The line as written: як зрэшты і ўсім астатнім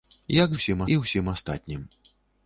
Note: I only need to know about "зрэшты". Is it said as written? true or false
false